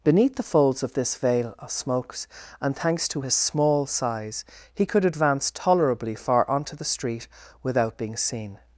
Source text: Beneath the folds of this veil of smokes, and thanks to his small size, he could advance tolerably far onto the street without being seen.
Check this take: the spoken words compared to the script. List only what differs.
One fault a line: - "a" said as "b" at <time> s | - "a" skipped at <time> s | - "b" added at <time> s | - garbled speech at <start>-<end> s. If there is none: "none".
none